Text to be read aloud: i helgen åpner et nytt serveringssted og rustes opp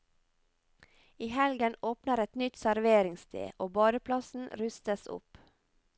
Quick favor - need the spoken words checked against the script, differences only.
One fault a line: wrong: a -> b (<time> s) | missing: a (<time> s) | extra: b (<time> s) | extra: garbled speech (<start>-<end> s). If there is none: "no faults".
extra: badeplassen (3.8 s)